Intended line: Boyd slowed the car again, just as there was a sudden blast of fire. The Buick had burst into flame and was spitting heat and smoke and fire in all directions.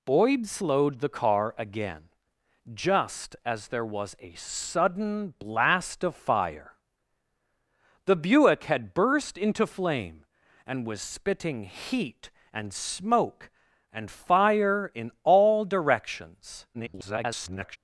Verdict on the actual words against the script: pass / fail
fail